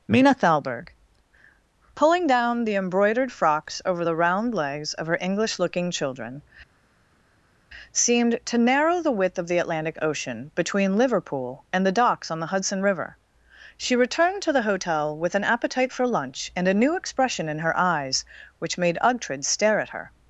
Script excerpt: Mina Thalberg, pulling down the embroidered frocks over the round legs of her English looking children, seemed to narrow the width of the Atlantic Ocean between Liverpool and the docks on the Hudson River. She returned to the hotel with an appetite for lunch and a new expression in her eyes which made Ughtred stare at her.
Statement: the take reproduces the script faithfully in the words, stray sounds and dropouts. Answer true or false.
true